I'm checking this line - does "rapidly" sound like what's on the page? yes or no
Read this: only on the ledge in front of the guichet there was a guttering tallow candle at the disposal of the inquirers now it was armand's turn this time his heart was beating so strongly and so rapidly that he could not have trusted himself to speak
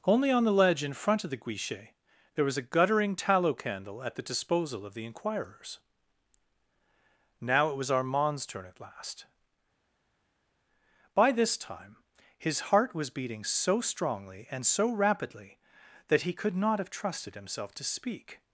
yes